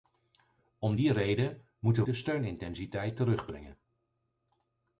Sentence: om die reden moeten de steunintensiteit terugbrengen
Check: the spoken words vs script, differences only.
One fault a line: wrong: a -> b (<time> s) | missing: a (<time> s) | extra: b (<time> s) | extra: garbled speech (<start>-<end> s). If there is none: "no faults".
no faults